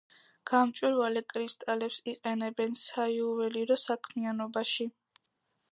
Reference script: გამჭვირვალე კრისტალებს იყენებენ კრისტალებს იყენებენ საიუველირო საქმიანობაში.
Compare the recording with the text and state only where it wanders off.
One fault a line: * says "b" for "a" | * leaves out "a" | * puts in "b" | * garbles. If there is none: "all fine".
* leaves out "კრისტალებს იყენებენ"